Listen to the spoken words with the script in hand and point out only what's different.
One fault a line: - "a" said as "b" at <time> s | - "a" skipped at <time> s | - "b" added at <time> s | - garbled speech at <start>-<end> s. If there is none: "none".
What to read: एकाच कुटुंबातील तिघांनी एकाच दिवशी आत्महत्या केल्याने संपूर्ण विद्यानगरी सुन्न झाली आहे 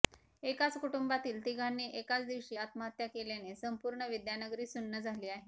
none